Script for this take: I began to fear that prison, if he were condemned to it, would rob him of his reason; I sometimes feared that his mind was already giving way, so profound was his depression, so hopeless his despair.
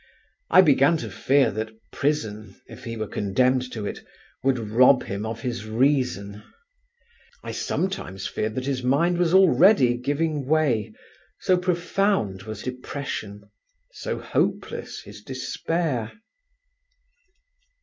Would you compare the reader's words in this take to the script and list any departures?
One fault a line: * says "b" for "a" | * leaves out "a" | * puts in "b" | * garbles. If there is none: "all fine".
* leaves out "his"